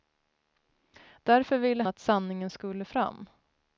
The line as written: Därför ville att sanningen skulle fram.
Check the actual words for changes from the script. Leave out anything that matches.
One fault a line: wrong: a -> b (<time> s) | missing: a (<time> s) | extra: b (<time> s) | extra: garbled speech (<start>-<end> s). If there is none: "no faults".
no faults